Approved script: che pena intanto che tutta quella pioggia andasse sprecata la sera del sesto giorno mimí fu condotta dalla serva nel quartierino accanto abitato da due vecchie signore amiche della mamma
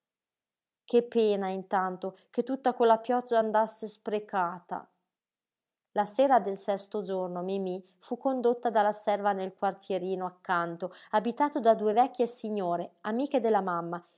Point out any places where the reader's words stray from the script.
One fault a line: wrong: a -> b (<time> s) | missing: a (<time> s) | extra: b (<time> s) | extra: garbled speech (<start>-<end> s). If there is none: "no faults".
no faults